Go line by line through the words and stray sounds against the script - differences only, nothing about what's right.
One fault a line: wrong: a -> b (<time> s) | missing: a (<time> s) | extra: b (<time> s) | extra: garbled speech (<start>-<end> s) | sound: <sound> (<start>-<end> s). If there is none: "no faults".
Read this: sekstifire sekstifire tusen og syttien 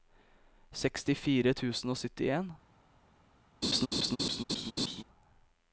missing: sekstifire (1.5 s)
sound: laugh (3.6-5.0 s)